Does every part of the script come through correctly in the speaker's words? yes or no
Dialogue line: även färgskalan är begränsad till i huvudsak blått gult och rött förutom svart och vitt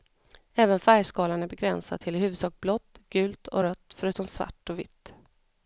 yes